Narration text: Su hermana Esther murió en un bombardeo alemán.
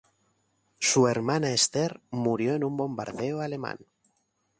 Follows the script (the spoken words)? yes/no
yes